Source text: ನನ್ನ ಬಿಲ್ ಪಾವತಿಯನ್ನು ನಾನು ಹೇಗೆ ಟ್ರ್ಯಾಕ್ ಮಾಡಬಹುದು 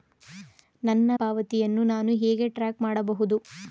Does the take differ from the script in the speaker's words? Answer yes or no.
yes